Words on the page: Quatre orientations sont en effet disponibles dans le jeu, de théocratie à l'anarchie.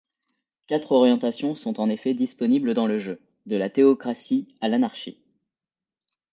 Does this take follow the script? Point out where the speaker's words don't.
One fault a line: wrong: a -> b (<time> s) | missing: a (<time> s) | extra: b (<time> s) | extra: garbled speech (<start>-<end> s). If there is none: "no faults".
extra: la (3.5 s)